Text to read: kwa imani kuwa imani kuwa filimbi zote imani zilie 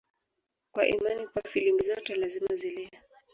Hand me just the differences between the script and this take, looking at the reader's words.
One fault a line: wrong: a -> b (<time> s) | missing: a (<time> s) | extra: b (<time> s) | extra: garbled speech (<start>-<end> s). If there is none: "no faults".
missing: imani kuwa (1.4 s)
wrong: imani -> lazima (2.1 s)